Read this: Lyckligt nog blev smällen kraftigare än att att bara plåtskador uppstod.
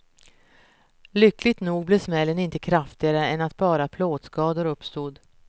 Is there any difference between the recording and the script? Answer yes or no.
yes